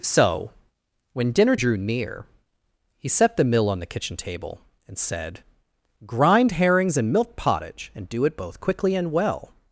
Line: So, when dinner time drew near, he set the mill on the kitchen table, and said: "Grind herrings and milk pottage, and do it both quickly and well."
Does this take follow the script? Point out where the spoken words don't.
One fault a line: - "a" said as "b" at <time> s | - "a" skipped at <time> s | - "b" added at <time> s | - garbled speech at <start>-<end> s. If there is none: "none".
- "time" skipped at 1.6 s